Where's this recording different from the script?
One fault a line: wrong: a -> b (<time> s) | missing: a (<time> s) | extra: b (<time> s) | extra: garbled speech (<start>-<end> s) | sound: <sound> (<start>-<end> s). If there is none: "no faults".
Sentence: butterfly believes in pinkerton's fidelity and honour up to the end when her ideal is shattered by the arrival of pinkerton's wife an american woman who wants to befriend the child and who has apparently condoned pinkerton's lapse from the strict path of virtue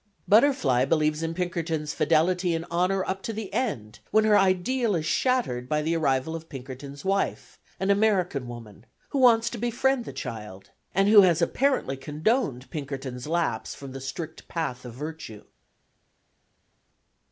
no faults